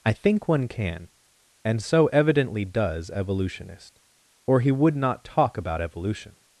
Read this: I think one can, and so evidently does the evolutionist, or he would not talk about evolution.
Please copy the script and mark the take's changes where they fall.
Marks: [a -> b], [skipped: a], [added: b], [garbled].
I think one can, and so evidently does [skipped: the] evolutionist, or he would not talk about evolution.